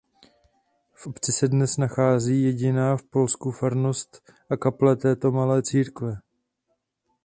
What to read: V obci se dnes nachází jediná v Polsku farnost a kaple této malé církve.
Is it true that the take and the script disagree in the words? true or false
false